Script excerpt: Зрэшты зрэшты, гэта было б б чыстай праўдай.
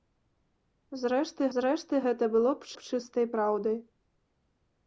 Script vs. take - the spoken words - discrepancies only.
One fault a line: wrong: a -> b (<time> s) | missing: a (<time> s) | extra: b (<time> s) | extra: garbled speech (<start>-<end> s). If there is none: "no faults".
no faults